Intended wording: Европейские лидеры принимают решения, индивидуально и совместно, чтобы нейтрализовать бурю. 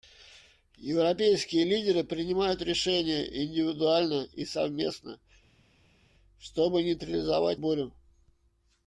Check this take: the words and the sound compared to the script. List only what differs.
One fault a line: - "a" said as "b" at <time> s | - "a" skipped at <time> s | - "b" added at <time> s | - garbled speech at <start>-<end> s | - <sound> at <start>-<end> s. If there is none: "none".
none